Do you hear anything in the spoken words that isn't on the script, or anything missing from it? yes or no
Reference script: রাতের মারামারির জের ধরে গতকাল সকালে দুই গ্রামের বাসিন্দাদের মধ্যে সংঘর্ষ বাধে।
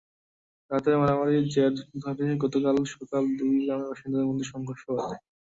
no